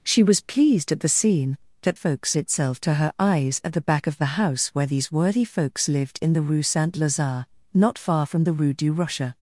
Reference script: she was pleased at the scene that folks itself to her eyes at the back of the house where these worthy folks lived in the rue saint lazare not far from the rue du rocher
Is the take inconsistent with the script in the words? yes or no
no